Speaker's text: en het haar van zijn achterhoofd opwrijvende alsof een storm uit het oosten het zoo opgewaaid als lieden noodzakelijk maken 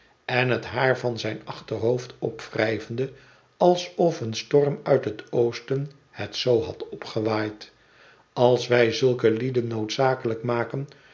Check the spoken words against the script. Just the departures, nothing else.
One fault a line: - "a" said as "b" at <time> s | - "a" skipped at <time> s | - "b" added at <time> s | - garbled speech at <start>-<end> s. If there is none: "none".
- "had" added at 6.6 s
- "wij zulke" added at 8.7 s